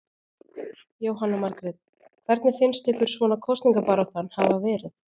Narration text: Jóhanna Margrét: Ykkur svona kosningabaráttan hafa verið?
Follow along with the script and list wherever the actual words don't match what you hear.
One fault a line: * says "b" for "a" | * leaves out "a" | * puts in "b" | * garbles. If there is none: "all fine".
* puts in "Hvernig finnst"